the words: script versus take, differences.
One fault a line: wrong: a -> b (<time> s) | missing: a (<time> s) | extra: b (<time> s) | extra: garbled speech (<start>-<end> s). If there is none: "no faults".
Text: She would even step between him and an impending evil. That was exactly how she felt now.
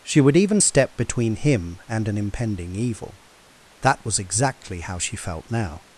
no faults